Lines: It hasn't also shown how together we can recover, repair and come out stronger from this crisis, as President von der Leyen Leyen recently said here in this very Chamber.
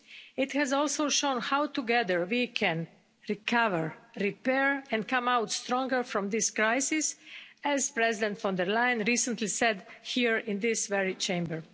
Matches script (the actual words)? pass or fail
fail